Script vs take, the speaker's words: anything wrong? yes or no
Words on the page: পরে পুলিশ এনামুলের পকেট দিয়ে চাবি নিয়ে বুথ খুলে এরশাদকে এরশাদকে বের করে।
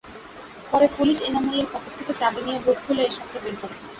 yes